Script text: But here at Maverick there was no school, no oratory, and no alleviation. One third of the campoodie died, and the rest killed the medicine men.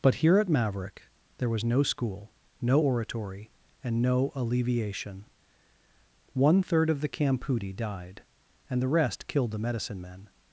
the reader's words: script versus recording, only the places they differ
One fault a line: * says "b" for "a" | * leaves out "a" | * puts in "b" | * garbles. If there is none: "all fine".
all fine